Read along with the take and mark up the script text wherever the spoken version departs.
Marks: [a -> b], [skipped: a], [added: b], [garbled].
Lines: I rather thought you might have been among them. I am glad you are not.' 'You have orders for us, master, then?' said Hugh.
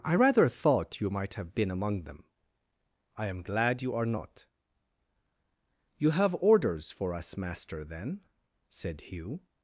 I rather thought you might have been among them. I am glad you are not.' 'You have orders for us, master, then?' said Hugh.